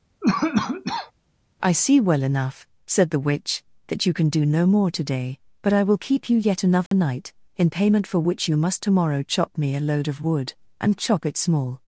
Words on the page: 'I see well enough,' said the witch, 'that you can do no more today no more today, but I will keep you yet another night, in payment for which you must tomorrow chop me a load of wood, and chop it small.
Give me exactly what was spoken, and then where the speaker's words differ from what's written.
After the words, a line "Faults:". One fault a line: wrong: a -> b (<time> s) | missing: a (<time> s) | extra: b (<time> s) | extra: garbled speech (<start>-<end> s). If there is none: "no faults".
'I see well enough,' said the witch, 'that you can do no more today, but I will keep you yet another night, in payment for which you must tomorrow chop me a load of wood, and chop it small.
Faults:
missing: no more today (5.4 s)